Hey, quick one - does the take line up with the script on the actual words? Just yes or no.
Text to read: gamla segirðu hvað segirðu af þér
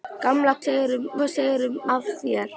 yes